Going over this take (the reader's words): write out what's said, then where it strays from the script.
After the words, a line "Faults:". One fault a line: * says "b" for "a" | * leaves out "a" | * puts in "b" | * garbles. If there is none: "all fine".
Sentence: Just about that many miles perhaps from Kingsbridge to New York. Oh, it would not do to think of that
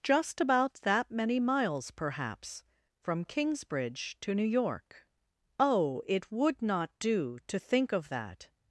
Just about that many miles perhaps from Kingsbridge to New York. Oh, it would not do to think of that
Faults:
all fine